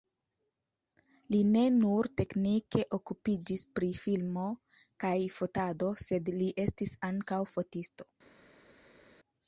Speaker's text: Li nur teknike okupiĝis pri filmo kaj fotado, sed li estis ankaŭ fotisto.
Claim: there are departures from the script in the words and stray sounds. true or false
true